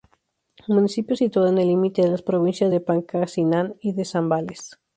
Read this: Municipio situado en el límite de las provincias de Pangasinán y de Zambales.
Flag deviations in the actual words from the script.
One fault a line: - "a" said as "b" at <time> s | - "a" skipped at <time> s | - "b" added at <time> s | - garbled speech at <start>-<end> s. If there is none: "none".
none